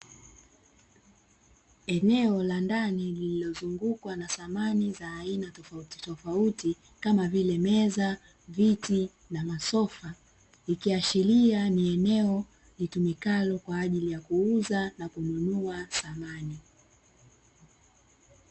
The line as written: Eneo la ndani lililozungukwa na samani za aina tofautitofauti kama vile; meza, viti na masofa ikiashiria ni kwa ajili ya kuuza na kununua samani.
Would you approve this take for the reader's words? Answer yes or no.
no